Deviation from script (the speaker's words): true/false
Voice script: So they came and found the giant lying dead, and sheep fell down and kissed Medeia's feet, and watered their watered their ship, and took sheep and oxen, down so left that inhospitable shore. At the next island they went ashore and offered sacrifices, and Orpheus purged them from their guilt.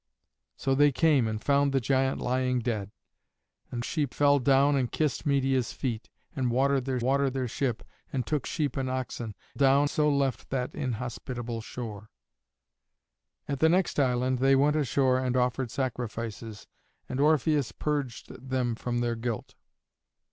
false